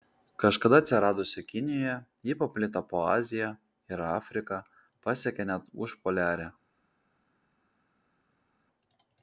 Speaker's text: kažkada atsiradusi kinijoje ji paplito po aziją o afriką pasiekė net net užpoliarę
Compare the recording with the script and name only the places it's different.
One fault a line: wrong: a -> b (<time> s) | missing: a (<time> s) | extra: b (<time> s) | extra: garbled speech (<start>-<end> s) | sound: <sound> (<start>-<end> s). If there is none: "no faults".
wrong: o -> ir (4.0 s)
missing: net (5.7 s)